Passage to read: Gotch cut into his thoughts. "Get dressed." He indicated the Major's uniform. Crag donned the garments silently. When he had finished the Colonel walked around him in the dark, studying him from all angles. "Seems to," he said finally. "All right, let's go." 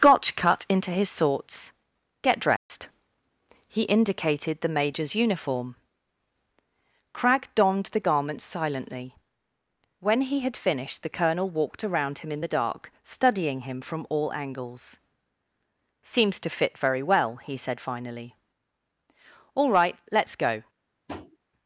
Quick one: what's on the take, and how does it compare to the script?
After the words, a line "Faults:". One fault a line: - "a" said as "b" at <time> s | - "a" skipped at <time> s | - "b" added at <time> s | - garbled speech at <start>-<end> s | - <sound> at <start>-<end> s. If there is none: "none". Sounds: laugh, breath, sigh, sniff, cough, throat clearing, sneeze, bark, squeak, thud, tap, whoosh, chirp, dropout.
Gotch cut into his thoughts. "Get dressed." He indicated the Major's uniform. Crag donned the garments silently. When he had finished the Colonel walked around him in the dark, studying him from all angles. "Seems to fit very well," he said finally. "All right, let's go."
Faults:
- dropout at 2.6-2.7 s
- "fit very well" added at 16.5 s
- tap at 21.1-21.4 s